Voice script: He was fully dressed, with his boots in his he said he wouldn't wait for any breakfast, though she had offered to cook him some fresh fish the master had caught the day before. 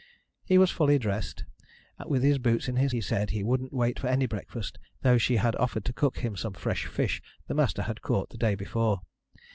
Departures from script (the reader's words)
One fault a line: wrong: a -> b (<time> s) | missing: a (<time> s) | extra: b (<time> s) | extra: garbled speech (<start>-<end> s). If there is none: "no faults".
no faults